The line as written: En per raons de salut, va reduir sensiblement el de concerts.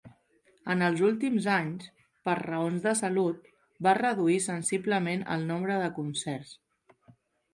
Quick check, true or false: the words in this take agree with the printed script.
false